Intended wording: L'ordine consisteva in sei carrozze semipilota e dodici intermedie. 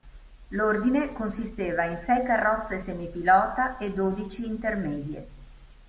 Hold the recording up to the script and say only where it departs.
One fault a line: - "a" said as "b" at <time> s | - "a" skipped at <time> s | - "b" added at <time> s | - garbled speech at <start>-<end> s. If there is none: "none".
none